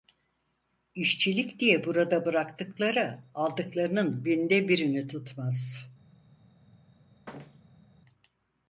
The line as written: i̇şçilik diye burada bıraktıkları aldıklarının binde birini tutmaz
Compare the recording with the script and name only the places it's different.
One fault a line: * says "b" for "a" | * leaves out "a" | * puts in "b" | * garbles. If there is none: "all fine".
all fine